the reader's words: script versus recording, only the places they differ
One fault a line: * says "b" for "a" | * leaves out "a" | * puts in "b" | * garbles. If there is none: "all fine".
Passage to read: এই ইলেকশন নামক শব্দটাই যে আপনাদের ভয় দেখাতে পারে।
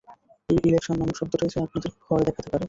all fine